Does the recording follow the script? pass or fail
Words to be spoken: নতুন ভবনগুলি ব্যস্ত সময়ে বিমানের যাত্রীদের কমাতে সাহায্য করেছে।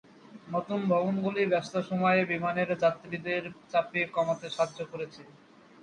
fail